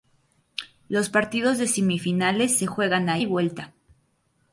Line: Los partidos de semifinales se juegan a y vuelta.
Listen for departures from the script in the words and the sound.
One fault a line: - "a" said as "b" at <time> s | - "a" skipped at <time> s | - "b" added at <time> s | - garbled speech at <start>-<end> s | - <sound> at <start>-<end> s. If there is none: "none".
none